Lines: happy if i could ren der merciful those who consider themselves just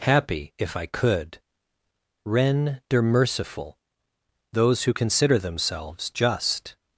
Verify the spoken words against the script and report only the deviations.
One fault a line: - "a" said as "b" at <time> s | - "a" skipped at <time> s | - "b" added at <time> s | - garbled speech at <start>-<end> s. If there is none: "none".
none